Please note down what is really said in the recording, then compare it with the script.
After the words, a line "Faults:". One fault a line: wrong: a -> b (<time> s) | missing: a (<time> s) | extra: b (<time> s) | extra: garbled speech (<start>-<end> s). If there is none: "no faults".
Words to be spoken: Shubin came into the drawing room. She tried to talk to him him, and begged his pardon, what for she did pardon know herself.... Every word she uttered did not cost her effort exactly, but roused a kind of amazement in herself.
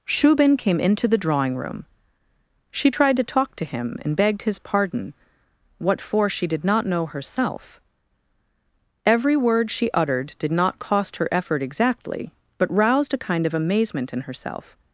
Shubin came into the drawing room. She tried to talk to him, and begged his pardon, what for she did not know herself.... Every word she uttered did not cost her effort exactly, but roused a kind of amazement in herself.
Faults:
missing: him (4.0 s)
wrong: pardon -> not (6.6 s)